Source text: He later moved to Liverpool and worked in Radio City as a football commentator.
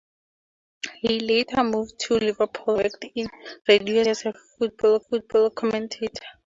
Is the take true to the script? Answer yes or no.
no